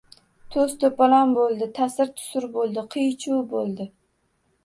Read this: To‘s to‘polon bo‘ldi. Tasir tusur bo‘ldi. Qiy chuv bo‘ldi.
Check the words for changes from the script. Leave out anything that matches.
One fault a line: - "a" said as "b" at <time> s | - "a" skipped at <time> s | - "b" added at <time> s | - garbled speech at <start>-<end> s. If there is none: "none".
none